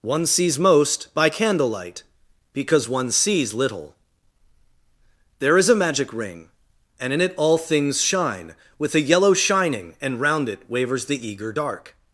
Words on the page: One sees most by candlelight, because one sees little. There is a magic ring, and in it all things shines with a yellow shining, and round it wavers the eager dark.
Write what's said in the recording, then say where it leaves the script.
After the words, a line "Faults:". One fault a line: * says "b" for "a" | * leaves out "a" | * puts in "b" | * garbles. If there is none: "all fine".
One sees most by candlelight, because one sees little. There is a magic ring, and in it all things shine with a yellow shining, and round it wavers the eager dark.
Faults:
* says "shine" for "shines"